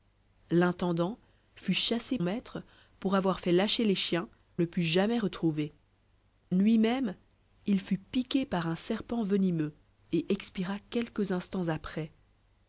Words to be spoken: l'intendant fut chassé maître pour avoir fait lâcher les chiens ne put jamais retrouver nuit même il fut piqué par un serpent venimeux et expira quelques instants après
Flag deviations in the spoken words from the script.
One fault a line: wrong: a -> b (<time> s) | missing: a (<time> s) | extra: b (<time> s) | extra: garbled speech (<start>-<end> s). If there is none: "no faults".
no faults